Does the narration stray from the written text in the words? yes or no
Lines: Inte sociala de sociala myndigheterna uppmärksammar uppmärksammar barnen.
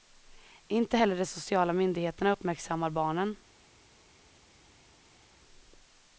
yes